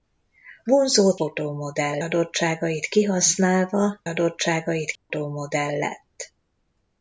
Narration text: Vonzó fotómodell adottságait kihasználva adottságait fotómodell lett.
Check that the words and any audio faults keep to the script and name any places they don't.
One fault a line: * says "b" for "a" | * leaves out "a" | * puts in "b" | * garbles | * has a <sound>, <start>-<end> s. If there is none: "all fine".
* has a dropout, 5.0-5.1 s